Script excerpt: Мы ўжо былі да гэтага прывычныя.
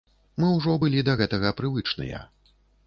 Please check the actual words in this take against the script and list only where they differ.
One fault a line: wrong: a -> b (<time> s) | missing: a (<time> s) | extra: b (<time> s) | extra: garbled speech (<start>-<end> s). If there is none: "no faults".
no faults